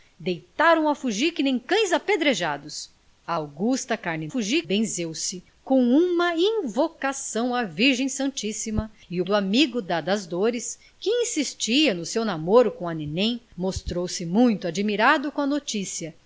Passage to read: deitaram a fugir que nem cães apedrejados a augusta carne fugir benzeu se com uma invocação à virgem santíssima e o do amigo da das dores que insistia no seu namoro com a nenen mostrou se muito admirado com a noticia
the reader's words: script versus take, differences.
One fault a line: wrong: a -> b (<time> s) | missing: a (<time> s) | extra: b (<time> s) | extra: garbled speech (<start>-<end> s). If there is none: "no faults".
no faults